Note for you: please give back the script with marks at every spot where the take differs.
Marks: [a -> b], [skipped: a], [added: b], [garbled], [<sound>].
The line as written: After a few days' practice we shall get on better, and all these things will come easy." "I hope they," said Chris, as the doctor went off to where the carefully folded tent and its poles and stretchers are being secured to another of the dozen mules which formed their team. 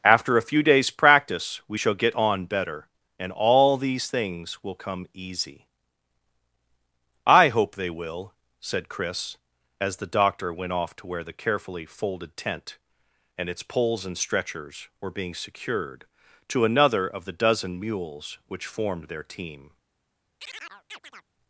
After a few days' practice we shall get on better, and all these things will come easy." "I hope they," [added: will] said Chris, as the doctor went off to where the carefully folded tent and its poles and stretchers [are -> were] being secured to another of the dozen mules which formed their team. [chirp]